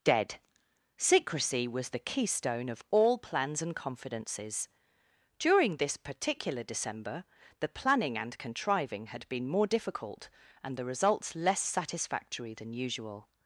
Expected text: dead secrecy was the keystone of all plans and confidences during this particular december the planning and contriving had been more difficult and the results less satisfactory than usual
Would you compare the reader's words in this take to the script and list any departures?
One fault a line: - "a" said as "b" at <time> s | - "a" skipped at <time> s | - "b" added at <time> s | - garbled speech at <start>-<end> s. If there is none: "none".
none